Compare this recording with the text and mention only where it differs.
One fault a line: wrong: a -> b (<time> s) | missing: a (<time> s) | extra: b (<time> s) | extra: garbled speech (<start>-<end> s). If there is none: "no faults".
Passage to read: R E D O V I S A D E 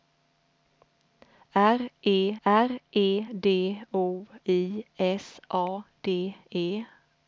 extra: r E (2.4 s)
missing: V (4.2 s)